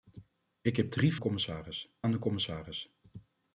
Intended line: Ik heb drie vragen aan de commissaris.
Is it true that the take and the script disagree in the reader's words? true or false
true